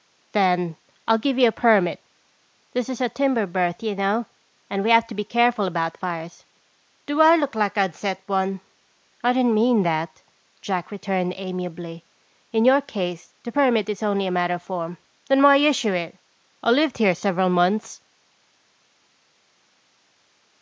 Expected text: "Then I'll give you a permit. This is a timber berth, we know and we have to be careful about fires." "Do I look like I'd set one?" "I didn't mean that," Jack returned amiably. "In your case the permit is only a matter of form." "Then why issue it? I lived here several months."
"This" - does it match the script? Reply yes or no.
yes